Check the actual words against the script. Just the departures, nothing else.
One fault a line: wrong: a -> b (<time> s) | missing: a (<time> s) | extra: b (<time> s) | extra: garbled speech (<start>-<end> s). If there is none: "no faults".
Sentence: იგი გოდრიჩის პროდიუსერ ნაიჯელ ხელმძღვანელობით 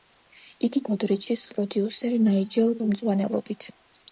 no faults